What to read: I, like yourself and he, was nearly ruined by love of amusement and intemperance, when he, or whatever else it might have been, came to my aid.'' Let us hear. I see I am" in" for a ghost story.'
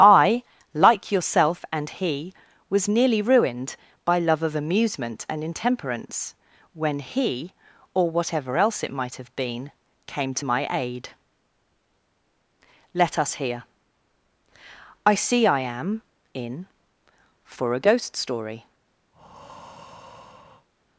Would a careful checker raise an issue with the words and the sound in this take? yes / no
yes